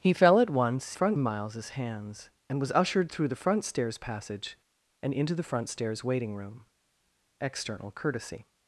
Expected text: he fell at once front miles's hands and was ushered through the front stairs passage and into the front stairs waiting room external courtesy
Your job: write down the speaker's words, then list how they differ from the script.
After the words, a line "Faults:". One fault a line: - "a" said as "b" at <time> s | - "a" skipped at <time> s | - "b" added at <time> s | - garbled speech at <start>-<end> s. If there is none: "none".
he fell at once front miles's hands and was ushered through the front stairs passage and into the front stairs waiting room external courtesy
Faults:
none